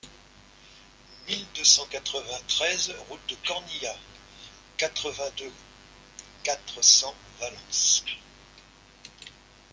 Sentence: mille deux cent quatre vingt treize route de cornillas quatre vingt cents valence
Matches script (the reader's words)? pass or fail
fail